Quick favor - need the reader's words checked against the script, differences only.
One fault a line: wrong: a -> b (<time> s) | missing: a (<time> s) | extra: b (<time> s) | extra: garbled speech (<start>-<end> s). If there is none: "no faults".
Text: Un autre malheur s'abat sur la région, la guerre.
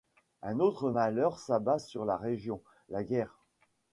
no faults